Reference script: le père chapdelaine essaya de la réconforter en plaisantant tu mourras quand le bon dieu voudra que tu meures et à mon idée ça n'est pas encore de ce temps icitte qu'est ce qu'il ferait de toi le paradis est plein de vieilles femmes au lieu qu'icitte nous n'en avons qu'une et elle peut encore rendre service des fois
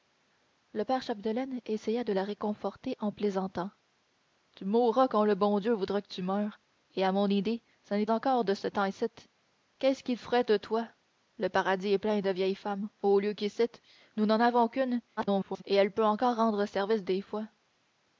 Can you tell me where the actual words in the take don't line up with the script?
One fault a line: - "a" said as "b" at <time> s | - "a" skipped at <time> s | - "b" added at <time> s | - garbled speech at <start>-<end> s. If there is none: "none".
- "pas" skipped at 8.1 s
- garbled speech at 15.2-15.6 s